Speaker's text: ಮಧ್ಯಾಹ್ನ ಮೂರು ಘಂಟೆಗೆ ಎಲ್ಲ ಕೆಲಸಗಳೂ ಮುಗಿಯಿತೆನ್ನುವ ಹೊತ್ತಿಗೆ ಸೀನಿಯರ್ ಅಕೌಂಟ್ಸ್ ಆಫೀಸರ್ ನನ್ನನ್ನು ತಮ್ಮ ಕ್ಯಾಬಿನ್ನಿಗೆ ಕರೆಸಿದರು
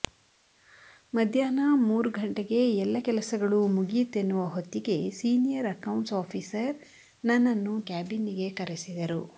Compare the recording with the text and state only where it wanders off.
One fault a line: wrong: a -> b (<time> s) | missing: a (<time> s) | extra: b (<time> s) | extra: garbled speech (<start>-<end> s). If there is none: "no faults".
missing: ತಮ್ಮ (7.8 s)